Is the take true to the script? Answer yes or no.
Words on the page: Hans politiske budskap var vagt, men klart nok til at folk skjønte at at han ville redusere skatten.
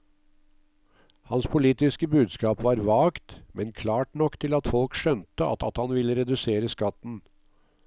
yes